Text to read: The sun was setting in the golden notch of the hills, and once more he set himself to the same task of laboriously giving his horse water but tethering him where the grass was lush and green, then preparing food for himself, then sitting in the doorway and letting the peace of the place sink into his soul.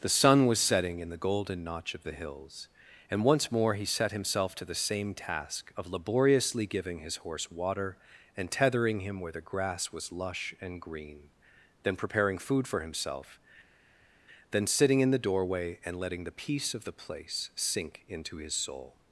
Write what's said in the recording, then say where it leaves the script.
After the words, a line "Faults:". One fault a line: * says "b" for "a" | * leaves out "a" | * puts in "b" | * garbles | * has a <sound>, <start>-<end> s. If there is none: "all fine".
The sun was setting in the golden notch of the hills, and once more he set himself to the same task of laboriously giving his horse water and tethering him where the grass was lush and green, then preparing food for himself, then sitting in the doorway and letting the peace of the place sink into his soul.
Faults:
* says "and" for "but"